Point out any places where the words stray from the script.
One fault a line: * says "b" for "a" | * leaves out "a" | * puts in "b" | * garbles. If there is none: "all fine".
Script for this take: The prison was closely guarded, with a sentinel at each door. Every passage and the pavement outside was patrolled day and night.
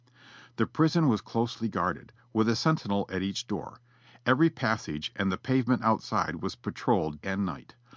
* leaves out "day"